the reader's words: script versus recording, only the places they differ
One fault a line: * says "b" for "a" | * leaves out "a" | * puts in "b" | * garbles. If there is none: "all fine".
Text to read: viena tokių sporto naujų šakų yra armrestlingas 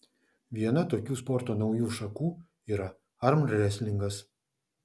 all fine